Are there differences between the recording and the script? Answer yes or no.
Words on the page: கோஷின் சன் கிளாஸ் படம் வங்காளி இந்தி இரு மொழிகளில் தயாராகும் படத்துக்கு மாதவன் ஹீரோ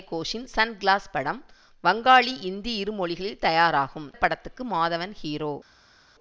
no